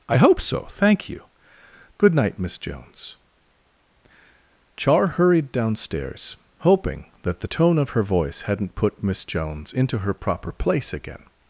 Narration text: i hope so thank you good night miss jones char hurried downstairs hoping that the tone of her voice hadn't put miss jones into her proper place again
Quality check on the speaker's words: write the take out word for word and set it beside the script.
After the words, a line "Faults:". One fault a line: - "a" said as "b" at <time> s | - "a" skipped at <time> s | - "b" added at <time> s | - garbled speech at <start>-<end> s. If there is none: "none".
i hope so thank you good night miss jones char hurried downstairs hoping that the tone of her voice hadn't put miss jones into her proper place again
Faults:
none